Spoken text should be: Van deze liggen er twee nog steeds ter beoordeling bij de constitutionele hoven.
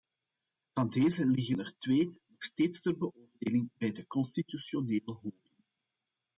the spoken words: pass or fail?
pass